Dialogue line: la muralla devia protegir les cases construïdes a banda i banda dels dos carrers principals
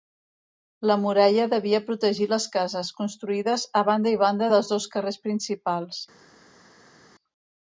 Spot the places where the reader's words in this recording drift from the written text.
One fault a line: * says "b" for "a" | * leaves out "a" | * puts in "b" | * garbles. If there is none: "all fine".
all fine